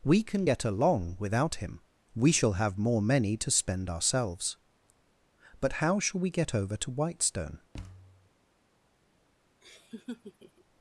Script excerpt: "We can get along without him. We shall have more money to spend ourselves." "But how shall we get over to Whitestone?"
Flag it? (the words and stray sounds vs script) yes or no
yes